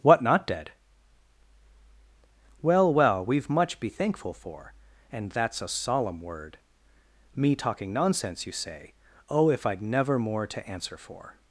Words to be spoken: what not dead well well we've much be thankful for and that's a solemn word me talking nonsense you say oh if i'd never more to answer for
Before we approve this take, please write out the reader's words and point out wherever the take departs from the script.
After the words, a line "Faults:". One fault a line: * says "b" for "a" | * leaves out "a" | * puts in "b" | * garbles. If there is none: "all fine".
what not dead well well we've much be thankful for and that's a solemn word me talking nonsense you say oh if i'd never more to answer for
Faults:
all fine